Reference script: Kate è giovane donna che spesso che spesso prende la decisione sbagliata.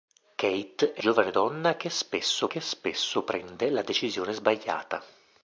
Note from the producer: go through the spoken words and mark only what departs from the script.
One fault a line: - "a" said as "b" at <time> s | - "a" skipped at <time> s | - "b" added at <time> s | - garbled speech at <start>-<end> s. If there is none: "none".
none